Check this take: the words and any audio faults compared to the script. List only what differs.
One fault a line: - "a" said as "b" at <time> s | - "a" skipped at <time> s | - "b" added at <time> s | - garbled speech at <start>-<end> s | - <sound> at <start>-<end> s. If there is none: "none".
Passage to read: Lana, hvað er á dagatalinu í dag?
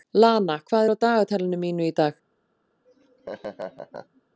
- "mínu" added at 1.6 s
- laugh at 2.9-4.2 s